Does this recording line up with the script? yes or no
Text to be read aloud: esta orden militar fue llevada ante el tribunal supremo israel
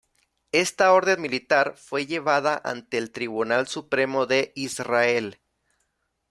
no